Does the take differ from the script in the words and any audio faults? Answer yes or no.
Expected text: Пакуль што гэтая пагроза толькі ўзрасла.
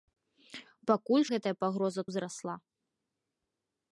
yes